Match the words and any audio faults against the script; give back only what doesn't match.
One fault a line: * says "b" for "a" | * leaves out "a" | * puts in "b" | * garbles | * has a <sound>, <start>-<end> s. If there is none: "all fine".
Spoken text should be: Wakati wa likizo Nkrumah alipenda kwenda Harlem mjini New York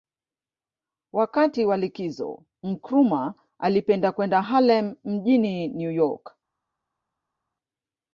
all fine